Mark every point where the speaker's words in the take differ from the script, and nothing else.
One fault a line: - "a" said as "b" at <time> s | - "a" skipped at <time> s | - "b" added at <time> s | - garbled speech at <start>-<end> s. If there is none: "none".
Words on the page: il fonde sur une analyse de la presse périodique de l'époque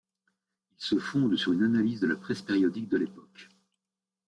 - "se" added at 0.8 s